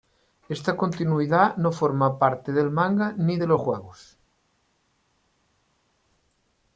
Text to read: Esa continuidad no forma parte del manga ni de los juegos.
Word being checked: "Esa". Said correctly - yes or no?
no